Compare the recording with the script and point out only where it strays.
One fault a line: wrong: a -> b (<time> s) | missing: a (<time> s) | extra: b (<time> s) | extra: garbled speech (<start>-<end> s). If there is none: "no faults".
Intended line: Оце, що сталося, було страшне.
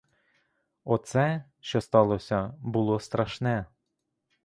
no faults